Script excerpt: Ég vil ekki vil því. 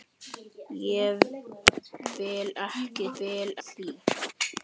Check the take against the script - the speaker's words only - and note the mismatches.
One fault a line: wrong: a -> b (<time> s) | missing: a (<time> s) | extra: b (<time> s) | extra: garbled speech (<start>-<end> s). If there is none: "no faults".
no faults